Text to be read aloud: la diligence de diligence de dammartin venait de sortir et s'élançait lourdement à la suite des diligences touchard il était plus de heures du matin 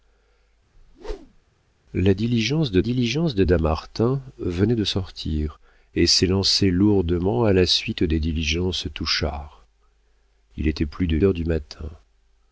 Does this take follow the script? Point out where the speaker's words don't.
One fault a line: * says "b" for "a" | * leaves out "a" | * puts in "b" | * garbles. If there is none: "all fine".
all fine